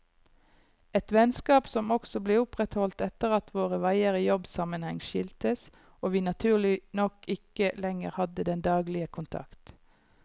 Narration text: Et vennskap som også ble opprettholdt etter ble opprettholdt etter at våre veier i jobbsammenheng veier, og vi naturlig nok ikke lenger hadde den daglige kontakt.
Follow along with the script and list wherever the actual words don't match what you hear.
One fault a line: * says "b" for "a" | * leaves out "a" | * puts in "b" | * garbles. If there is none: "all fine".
* leaves out "ble opprettholdt etter"
* says "skiltes" for "veier"